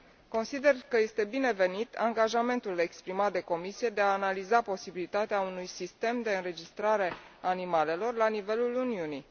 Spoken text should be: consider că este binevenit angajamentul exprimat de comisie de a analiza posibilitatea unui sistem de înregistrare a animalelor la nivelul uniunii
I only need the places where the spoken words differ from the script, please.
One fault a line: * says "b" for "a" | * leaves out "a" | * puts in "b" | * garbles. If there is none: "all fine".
all fine